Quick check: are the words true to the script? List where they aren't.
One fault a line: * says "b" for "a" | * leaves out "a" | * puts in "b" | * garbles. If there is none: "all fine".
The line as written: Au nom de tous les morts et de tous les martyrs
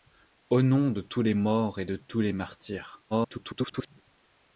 * garbles